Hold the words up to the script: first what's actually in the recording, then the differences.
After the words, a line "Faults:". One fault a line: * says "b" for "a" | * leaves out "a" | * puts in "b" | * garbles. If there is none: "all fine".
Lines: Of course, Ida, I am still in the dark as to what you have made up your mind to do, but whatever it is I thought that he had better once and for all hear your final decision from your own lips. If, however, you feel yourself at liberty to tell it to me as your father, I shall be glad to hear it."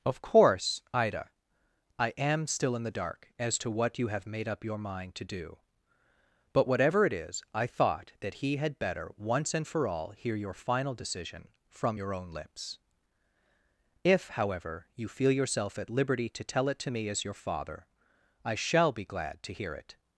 Of course, Ida, I am still in the dark as to what you have made up your mind to do, but whatever it is I thought that he had better once and for all hear your final decision from your own lips. If, however, you feel yourself at liberty to tell it to me as your father, I shall be glad to hear it."
Faults:
all fine